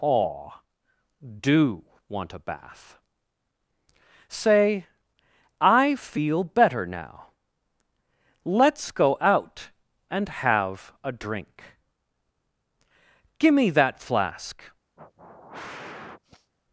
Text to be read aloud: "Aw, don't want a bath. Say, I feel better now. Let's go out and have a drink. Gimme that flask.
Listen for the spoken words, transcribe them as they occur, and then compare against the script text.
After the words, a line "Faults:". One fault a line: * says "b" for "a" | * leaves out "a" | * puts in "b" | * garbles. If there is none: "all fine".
"Aw, do want a bath. Say, I feel better now. Let's go out and have a drink. Gimme that flask.
Faults:
* says "do" for "don't"